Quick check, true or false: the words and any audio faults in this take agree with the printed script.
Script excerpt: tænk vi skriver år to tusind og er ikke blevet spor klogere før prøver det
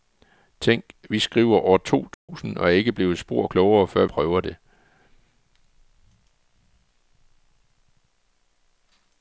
false